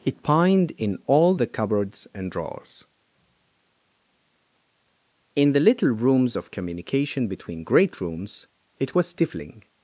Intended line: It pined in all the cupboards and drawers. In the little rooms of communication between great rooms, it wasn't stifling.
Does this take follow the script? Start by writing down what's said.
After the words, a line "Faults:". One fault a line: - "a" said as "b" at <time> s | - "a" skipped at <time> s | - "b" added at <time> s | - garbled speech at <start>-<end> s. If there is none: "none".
It pined in all the cupboards and drawers. In the little rooms of communication between great rooms, it was stifling.
Faults:
- "wasn't" said as "was" at 8.9 s